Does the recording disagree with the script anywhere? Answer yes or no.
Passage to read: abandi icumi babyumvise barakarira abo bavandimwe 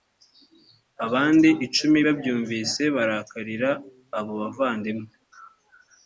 no